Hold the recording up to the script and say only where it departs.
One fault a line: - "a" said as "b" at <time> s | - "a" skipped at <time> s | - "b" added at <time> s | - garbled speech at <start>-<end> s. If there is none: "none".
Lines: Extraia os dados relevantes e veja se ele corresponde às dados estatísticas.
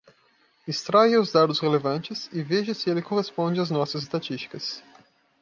- "dados" said as "nossas" at 3.7 s